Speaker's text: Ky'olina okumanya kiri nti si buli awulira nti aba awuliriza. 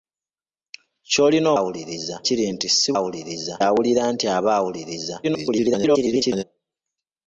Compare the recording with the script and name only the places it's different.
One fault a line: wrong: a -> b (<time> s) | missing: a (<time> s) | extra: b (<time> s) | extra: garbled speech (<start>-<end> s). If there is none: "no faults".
wrong: okumanya -> awuliriza (1.6 s)
wrong: buli -> awuliriza (3.0 s)
extra: garbled speech (5.2-6.4 s)